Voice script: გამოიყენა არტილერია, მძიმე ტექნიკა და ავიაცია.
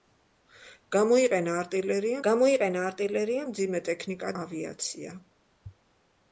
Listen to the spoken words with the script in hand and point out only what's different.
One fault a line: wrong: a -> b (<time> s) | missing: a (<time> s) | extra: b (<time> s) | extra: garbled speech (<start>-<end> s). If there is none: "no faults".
extra: გამოიყენა არტილერია (2.3 s)
missing: და (4.3 s)